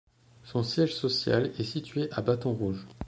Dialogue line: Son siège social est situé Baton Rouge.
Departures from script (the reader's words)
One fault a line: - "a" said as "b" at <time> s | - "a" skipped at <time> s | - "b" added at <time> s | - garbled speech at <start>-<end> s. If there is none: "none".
- "à" added at 2.1 s